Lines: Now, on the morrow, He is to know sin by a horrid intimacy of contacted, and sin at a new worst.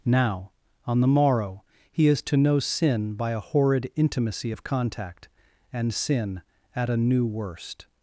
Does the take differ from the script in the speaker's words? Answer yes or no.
yes